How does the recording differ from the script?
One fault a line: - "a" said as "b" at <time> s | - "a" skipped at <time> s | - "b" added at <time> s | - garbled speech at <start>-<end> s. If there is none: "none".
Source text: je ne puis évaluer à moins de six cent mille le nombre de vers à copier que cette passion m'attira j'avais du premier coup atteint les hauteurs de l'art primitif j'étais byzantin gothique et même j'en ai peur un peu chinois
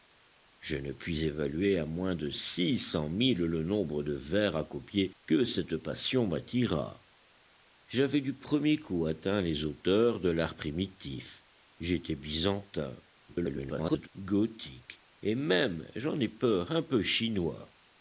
- garbled speech at 13.3-14.1 s